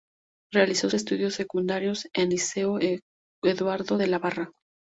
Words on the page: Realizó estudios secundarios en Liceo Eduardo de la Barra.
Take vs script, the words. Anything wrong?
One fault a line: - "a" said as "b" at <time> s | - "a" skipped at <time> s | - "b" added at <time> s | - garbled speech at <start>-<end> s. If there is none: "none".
none